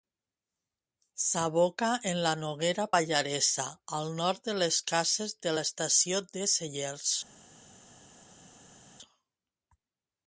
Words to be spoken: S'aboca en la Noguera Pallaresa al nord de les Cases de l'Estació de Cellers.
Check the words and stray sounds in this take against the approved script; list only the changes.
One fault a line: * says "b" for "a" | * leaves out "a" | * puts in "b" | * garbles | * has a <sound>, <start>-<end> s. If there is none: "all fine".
all fine